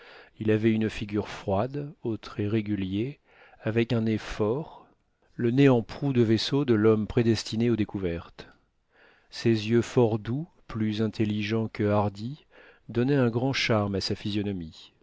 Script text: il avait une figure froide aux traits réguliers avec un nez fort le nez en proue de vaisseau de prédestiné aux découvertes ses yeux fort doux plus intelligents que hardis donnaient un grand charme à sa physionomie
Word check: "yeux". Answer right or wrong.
right